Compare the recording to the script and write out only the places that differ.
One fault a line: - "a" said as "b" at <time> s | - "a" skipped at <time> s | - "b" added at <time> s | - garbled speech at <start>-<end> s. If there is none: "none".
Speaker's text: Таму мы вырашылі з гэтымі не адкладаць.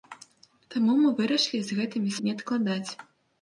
none